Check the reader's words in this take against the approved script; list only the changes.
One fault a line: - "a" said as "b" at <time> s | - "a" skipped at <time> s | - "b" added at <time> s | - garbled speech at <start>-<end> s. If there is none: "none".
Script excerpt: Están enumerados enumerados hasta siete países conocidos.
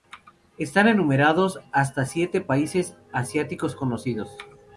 - "enumerados" skipped at 1.6 s
- "asiáticos" added at 3.1 s